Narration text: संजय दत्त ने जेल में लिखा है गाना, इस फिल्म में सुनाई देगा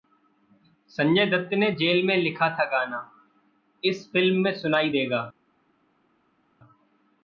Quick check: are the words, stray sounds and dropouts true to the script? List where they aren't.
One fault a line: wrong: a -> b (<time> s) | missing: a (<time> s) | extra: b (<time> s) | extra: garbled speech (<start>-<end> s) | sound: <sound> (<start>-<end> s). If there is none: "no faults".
wrong: है -> था (2.5 s)